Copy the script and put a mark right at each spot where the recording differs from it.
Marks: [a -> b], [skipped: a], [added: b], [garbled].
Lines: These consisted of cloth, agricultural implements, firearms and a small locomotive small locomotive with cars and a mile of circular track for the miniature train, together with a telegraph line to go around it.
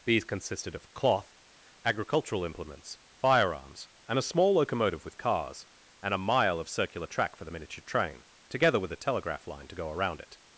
These consisted of cloth, agricultural implements, firearms and a small locomotive [skipped: small locomotive] with cars and a mile of circular track for the miniature train, together with a telegraph line to go around it.